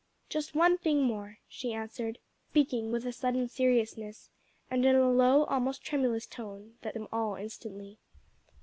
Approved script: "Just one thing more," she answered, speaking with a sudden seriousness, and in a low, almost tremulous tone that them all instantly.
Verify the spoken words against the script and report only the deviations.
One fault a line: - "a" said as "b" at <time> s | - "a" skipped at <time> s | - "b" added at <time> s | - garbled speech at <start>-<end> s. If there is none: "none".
none